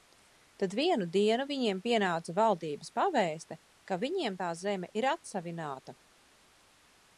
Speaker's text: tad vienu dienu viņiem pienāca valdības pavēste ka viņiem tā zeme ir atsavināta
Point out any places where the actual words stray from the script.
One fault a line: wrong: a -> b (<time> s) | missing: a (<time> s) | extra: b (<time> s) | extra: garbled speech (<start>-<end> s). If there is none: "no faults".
no faults